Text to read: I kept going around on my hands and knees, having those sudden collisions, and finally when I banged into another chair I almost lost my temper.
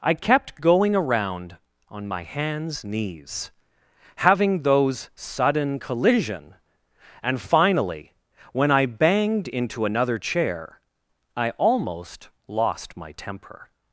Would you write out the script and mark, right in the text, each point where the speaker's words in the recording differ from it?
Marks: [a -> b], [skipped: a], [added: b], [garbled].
I kept going around on my hands [skipped: and] knees, having those sudden [collisions, -> collision] and finally when I banged into another chair I almost lost my temper.